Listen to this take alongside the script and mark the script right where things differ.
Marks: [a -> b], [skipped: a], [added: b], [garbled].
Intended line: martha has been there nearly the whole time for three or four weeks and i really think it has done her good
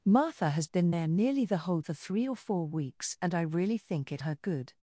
martha has been there nearly the whole [skipped: time] for three or four weeks and i really think it [skipped: has done] her good